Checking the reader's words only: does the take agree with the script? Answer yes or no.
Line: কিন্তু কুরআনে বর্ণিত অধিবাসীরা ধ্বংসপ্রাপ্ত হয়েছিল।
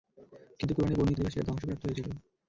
yes